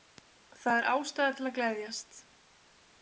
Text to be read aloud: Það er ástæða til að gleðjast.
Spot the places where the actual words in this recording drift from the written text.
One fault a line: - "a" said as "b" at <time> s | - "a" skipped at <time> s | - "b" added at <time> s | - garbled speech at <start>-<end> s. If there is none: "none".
none